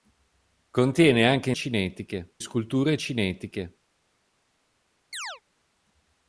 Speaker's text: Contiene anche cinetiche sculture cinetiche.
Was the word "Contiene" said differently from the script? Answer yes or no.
no